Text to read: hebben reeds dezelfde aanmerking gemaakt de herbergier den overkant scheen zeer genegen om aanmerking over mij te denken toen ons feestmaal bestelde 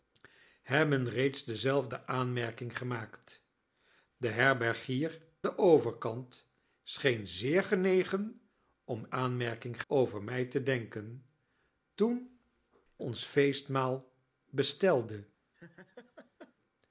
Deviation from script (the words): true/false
false